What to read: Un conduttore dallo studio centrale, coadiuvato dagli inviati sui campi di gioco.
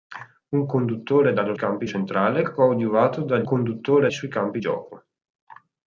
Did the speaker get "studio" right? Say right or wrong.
wrong